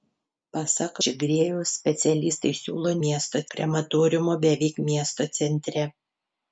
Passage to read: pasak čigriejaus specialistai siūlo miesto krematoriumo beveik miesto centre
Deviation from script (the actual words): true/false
false